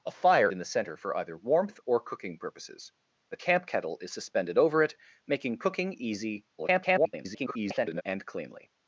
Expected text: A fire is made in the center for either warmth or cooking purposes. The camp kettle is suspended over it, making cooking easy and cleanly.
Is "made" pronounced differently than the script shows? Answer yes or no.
yes